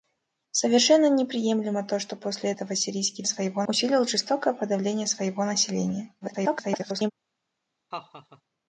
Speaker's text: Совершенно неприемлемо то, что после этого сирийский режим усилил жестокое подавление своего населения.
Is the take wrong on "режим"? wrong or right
wrong